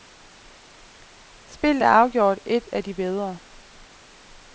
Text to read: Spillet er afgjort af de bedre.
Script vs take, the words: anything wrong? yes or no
yes